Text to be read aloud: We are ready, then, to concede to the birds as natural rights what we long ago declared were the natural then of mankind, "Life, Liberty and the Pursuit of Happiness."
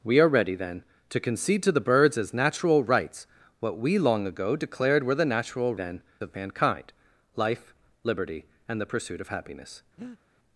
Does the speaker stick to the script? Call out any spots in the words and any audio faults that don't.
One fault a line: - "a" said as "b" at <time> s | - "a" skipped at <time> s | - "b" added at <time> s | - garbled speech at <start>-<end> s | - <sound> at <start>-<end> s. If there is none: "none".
- breath at 10.0-10.2 s